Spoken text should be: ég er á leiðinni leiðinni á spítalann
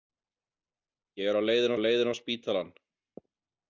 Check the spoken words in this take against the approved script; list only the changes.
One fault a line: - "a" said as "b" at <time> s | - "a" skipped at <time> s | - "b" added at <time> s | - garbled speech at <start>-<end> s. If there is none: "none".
none